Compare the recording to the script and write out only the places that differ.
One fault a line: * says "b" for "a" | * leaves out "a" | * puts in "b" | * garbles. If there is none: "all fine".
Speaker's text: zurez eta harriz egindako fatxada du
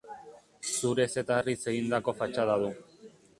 all fine